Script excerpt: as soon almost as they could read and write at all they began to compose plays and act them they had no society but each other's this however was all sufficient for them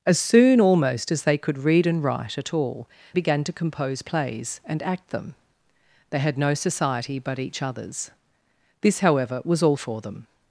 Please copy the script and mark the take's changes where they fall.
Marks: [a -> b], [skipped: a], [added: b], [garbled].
as soon almost as they could read and write at all [skipped: they] began to compose plays and act them they had no society but each other's this however was all [skipped: sufficient] for them